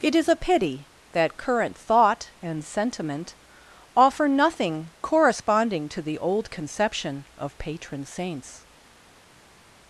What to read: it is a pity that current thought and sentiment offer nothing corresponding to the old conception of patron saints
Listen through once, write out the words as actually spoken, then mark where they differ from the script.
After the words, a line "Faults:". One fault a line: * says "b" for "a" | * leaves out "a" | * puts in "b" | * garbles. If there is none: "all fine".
it is a pity that current thought and sentiment offer nothing corresponding to the old conception of patron saints
Faults:
all fine